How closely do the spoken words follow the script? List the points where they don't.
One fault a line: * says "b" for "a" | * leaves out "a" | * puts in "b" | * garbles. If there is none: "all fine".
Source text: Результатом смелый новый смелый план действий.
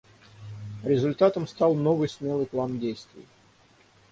* says "стал" for "смелый"